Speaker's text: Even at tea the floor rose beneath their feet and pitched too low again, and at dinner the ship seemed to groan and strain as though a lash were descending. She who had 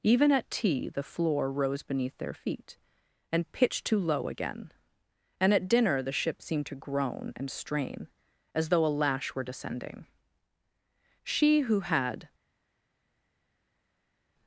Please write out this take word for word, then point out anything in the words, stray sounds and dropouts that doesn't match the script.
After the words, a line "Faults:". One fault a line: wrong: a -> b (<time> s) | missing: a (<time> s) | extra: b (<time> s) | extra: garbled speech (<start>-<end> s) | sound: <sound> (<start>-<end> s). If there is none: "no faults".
Even at tea the floor rose beneath their feet and pitched too low again, and at dinner the ship seemed to groan and strain as though a lash were descending. She who had
Faults:
no faults